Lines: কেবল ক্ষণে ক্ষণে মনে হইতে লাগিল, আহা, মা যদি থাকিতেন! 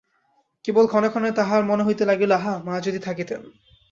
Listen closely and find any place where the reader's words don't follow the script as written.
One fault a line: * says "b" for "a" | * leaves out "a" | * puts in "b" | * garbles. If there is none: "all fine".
* puts in "তাহার"